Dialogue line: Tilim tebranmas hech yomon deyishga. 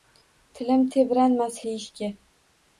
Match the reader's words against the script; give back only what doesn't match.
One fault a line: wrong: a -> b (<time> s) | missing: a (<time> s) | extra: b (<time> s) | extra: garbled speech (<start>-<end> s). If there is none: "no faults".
missing: hech yomon (1.6 s)